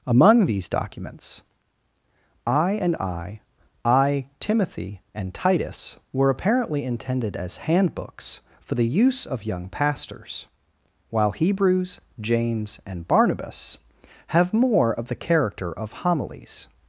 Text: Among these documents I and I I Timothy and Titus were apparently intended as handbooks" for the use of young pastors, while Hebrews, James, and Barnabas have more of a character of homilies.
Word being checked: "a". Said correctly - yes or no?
no